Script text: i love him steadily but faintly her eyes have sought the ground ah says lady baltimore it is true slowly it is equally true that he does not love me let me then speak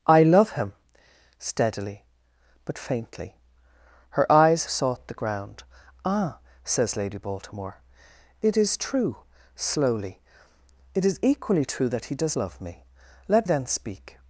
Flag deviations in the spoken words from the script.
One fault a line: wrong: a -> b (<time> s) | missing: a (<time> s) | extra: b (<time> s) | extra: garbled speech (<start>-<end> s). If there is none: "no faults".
missing: have (4.7 s)
missing: not (12.4 s)
missing: me (13.5 s)